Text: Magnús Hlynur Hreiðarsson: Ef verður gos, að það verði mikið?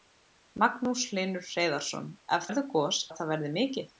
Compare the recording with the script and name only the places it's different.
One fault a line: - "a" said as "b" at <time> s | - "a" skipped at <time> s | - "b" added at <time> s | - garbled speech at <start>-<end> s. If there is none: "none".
none